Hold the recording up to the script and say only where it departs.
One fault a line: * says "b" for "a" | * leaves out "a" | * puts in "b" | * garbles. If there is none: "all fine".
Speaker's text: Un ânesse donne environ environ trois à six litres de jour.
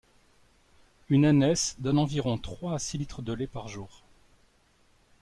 * says "Une" for "Un"
* leaves out "environ"
* puts in "lait par"